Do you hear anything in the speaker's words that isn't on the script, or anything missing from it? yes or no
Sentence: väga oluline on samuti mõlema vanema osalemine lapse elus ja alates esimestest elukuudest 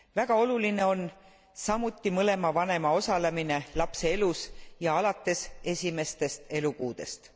no